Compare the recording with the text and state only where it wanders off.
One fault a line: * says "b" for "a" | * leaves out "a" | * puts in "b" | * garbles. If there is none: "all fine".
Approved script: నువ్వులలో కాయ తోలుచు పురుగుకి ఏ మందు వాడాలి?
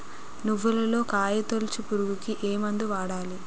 all fine